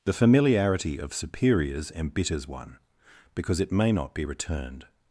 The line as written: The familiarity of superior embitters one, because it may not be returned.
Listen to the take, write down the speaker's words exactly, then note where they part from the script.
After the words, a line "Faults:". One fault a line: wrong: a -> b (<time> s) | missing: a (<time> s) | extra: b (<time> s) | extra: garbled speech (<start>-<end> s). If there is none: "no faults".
The familiarity of superiors embitters one, because it may not be returned.
Faults:
wrong: superior -> superiors (1.1 s)